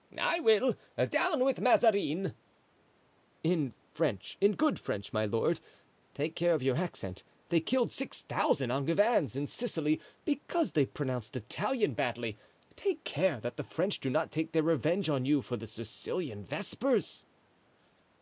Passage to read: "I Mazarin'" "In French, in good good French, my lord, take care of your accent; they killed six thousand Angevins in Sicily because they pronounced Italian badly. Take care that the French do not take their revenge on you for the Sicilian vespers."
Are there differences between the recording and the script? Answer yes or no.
yes